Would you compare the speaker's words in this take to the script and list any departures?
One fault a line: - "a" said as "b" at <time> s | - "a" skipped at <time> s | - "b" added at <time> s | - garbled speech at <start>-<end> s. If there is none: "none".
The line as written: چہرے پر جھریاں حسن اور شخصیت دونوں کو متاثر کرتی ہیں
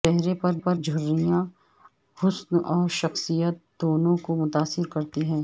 - "پر" added at 0.6 s